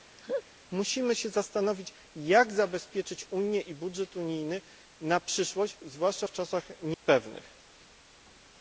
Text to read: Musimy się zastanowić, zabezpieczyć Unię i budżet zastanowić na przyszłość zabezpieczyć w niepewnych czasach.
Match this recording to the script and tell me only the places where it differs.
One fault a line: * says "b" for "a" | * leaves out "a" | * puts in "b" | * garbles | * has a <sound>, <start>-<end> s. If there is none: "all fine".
* has a laugh, 0.2-0.4 s
* puts in "jak"
* says "unijny" for "zastanowić"
* says "zwłaszcza" for "zabezpieczyć"
* has a dropout, 6.9-7.0 s